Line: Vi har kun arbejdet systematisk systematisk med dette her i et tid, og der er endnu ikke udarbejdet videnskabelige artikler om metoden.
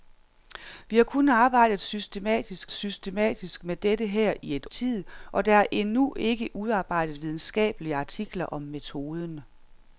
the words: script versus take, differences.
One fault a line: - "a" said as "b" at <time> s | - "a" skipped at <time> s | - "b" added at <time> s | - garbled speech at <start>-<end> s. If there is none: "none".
none